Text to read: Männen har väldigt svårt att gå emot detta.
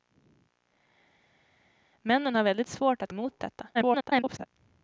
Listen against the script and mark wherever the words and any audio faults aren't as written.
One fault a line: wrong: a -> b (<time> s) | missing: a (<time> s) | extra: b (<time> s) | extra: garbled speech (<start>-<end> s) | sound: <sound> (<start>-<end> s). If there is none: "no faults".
missing: gå (3.1 s)
extra: garbled speech (3.7-4.5 s)